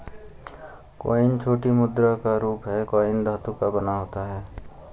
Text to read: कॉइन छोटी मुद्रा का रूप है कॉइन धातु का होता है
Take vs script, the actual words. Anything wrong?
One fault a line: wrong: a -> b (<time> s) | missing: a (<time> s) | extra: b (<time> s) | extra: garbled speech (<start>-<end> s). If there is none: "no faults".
extra: बना (3.7 s)